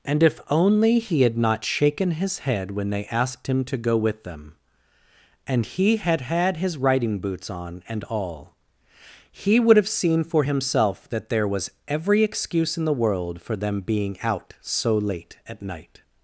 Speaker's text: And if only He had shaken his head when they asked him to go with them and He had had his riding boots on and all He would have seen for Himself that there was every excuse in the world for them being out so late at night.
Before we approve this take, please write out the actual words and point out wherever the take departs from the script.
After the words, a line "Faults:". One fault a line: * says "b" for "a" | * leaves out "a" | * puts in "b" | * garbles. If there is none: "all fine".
And if only He had not shaken his head when they asked him to go with them and He had had his riding boots on and all He would have seen for Himself that there was every excuse in the world for them being out so late at night.
Faults:
* puts in "not"